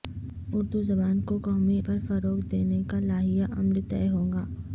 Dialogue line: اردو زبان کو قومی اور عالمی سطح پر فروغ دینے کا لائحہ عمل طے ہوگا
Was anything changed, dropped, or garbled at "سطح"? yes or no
yes